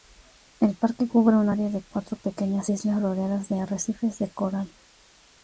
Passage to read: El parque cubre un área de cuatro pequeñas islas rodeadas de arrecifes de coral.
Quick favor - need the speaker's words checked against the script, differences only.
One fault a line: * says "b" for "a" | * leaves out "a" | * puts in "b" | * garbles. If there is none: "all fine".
all fine